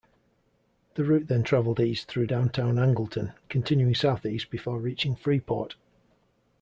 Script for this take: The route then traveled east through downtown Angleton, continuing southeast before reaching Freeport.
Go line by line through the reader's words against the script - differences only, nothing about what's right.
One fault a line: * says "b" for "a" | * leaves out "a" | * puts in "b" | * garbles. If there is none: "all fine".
all fine